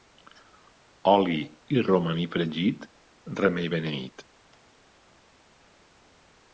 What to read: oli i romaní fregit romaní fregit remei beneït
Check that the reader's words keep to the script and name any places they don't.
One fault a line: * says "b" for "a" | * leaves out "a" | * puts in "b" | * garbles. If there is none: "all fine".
* leaves out "romaní fregit"